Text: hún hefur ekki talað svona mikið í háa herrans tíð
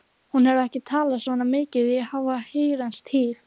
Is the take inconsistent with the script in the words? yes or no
no